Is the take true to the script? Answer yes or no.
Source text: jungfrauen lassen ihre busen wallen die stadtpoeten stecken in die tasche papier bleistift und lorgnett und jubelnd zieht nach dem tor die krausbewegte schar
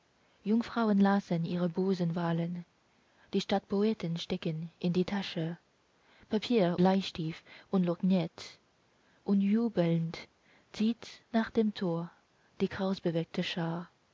yes